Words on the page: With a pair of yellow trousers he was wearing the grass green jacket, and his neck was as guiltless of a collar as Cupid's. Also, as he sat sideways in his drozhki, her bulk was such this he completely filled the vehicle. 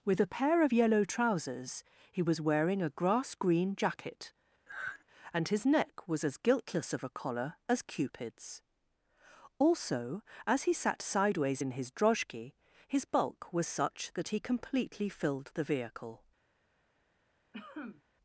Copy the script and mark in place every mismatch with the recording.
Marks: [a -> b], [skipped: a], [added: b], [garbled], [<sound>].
With a pair of yellow trousers he was wearing [the -> a] grass green jacket, [sigh] and his neck was as guiltless of a collar as Cupid's. Also, as he sat sideways in his drozhki, [her -> his] bulk was such [this -> that] he completely filled the vehicle. [cough]